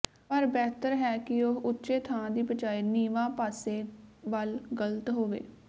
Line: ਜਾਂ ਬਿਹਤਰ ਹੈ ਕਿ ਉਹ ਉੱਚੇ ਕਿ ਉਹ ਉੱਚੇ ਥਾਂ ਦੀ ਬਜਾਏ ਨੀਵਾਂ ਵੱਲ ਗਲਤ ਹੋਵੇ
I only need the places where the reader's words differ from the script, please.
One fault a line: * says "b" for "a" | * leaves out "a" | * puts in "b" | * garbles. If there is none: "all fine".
* says "ਪਰ" for "ਜਾਂ"
* leaves out "ਕਿ ਉਹ ਉੱਚੇ"
* puts in "ਪਾਸੇ"